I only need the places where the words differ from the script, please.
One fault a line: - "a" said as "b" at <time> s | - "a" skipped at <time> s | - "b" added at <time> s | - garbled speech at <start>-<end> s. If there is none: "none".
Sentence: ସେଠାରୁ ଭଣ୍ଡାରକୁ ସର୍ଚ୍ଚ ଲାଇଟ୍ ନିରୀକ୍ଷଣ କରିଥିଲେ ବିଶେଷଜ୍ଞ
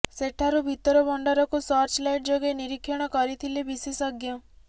- "ଭିତର" added at 0.7 s
- "ଯୋଗେ" added at 2.3 s